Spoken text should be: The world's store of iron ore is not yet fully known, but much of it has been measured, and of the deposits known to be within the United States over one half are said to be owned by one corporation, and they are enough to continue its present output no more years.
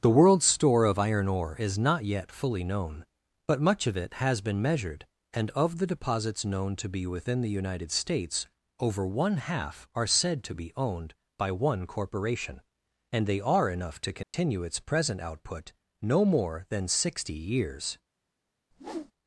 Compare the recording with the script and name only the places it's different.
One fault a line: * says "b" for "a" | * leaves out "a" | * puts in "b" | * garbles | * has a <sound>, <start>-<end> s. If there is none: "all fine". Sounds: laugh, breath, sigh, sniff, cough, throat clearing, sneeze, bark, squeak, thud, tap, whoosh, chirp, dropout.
* has a dropout, 14.2-14.3 s
* puts in "than sixty"
* has a whoosh, 18.7-19.1 s